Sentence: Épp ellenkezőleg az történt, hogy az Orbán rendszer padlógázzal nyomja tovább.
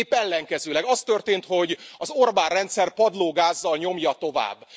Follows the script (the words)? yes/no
yes